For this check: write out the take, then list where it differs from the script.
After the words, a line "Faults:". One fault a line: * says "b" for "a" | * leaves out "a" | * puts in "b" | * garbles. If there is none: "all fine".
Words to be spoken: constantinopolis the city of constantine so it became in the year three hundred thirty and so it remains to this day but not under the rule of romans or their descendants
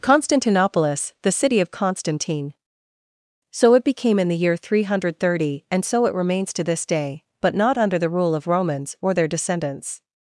constantinopolis the city of constantine so it became in the year three hundred thirty and so it remains to this day but not under the rule of romans or their descendants
Faults:
all fine